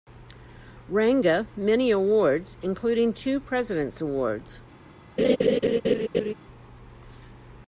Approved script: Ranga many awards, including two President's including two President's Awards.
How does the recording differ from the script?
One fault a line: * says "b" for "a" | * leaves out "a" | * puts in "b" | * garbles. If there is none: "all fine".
* leaves out "including two President's"